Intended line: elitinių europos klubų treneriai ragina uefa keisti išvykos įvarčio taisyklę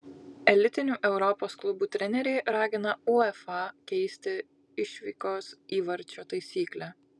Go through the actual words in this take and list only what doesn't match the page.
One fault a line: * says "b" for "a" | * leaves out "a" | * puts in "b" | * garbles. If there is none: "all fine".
all fine